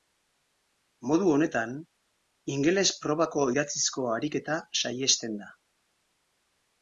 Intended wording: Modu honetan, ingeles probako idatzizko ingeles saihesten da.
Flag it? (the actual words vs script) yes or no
yes